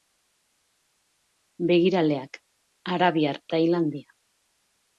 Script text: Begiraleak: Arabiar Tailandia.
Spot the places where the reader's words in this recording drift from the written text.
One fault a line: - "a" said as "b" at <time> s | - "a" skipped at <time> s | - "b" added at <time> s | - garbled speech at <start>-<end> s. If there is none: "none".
none